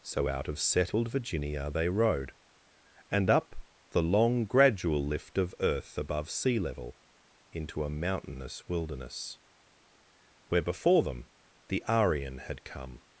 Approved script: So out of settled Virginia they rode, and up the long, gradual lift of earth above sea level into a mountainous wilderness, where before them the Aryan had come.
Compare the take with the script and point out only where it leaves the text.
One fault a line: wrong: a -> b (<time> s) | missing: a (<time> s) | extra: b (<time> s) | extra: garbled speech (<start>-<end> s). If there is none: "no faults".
no faults